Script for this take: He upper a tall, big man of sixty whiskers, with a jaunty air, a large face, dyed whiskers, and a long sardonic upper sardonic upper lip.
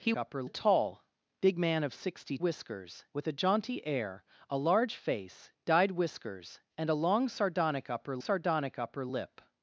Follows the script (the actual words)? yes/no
yes